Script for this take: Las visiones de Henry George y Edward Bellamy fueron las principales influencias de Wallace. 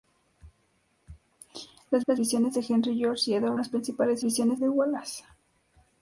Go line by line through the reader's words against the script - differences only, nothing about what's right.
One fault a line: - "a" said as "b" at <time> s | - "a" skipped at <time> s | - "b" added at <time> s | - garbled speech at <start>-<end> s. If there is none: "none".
- "las" added at 2.1 s
- "Bellamy fueron" skipped at 3.6 s
- "influencias" said as "visiones" at 4.2 s